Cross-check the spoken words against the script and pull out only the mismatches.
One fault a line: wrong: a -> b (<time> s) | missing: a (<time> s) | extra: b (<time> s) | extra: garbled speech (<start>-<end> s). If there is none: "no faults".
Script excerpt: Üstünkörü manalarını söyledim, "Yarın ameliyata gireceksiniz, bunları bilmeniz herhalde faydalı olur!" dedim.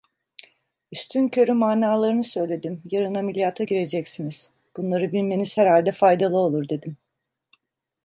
no faults